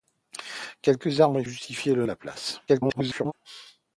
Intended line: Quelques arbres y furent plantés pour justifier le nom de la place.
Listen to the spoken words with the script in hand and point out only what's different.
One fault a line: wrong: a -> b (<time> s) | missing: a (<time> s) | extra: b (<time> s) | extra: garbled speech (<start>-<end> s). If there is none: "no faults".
missing: furent plantés pour (1.4 s)
missing: nom (2.0 s)
extra: garbled speech (2.7-3.3 s)